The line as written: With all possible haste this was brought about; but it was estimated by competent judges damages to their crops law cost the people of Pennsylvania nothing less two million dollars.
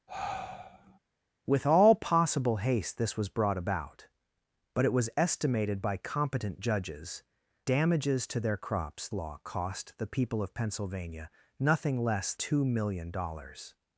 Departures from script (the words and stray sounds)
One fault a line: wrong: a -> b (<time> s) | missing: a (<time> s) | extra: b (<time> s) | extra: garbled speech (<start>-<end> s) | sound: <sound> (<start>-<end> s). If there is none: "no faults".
sound: sigh (0.1-1.0 s)